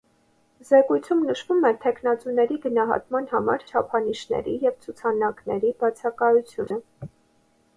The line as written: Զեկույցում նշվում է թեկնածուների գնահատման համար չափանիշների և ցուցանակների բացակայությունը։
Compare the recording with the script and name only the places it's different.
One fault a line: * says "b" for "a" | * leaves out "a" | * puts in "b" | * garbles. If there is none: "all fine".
all fine